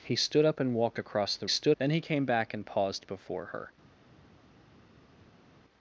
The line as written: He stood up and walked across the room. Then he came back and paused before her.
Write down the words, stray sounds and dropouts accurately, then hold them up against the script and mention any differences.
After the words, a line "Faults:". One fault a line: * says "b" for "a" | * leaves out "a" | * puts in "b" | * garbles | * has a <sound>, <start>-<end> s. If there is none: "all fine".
He stood up and walked across the stood. Then he came back and paused before her.
Faults:
* says "stood" for "room"